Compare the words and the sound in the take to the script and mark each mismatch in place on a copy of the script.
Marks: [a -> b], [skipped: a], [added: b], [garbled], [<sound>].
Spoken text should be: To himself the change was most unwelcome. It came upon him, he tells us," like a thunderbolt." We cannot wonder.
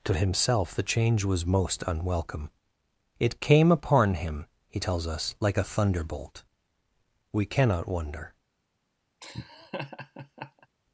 To himself the change was most unwelcome. It came upon him, he tells us," like a thunderbolt." We cannot wonder. [laugh]